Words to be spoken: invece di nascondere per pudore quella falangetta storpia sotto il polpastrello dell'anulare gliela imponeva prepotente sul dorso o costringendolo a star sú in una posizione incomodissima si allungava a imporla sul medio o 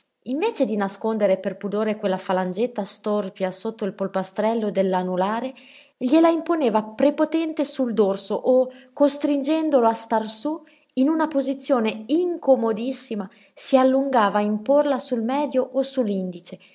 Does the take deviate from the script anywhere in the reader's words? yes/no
no